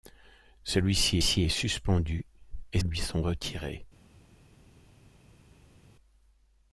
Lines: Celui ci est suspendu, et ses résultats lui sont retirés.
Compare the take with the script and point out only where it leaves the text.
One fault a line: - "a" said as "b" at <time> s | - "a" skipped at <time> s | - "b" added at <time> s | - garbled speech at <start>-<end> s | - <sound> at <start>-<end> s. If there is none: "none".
- "ci" added at 1.2 s
- "ses résultats" skipped at 2.8 s